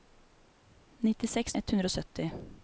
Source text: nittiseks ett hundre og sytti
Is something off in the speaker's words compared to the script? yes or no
no